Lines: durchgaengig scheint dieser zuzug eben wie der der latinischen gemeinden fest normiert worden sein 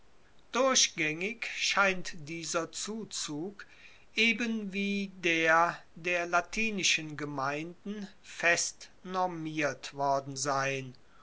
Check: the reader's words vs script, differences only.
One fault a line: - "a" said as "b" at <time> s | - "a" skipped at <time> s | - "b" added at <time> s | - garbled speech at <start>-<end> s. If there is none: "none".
none